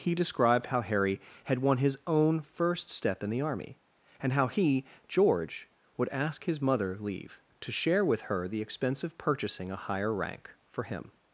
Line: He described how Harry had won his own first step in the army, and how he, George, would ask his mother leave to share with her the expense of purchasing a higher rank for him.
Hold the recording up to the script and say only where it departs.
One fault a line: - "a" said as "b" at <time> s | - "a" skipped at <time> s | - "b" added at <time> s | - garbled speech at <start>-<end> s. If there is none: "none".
none